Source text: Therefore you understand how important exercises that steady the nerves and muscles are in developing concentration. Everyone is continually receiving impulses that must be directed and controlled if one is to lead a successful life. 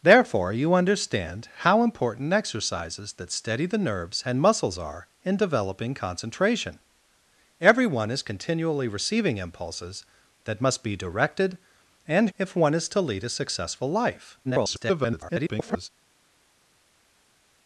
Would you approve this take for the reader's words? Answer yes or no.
no